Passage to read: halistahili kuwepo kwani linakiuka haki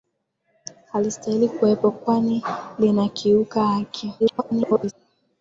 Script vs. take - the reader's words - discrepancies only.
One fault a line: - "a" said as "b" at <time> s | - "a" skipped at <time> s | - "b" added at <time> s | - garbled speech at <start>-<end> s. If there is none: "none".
- garbled speech at 4.2-4.9 s